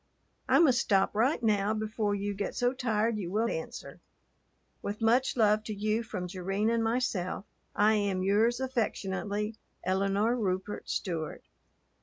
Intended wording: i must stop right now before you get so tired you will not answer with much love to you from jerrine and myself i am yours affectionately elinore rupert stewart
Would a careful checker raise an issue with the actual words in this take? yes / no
yes